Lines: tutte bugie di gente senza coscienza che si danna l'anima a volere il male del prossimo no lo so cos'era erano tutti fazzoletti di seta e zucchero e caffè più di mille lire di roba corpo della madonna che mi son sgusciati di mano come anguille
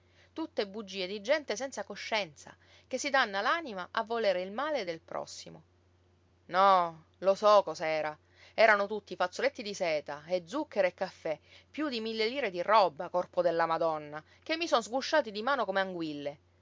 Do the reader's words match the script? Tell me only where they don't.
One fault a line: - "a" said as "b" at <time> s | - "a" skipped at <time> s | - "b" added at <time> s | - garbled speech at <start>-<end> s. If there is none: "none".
none